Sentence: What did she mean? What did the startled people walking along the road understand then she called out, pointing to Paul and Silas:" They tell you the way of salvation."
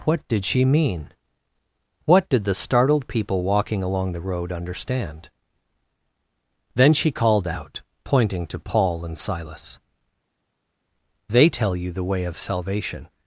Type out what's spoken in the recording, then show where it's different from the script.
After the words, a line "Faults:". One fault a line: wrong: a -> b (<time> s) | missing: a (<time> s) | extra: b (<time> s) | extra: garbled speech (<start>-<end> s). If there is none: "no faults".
What did she mean? What did the startled people walking along the road understand then she called out, pointing to Paul and Silas:" They tell you the way of salvation."
Faults:
no faults